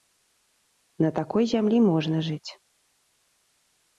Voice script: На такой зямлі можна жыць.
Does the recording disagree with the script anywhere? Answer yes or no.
no